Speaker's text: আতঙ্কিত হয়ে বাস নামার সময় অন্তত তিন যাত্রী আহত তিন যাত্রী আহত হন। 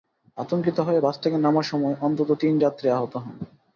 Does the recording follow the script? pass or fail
fail